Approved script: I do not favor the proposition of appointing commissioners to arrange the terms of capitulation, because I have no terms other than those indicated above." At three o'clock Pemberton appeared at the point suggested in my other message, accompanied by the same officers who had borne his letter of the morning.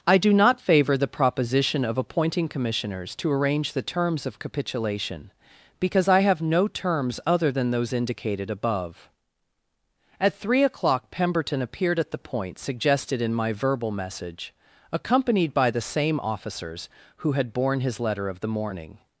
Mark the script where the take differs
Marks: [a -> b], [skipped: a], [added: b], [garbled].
I do not favor the proposition of appointing commissioners to arrange the terms of capitulation, because I have no terms other than those indicated above." At three o'clock Pemberton appeared at the point suggested in my [other -> verbal] message, accompanied by the same officers who had borne his letter of the morning.